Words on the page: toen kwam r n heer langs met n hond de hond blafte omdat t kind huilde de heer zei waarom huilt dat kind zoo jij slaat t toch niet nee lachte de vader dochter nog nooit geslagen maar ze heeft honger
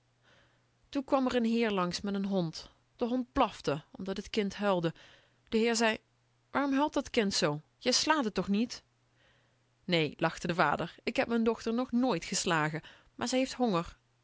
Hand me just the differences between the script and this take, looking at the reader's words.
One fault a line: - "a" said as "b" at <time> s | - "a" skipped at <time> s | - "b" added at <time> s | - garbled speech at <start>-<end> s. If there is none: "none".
- "ik heb m'n" added at 11.0 s